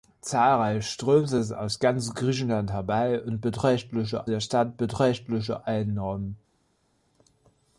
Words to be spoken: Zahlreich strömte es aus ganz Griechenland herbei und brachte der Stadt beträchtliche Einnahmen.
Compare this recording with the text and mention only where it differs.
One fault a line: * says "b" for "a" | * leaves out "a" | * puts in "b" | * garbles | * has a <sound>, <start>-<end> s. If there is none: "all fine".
* says "beträchtliche" for "brachte"